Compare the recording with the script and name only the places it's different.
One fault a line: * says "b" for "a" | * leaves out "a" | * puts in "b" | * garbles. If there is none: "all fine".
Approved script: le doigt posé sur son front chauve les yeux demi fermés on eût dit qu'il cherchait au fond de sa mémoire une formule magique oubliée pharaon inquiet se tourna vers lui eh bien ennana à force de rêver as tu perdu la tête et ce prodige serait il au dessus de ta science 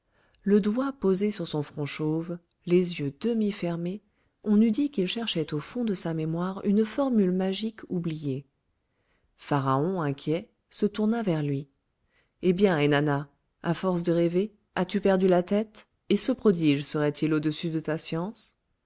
all fine